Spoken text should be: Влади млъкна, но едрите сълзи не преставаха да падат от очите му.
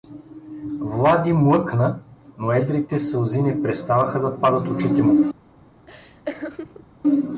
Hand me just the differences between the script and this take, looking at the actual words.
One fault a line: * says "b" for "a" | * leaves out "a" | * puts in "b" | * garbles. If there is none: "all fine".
* leaves out "от"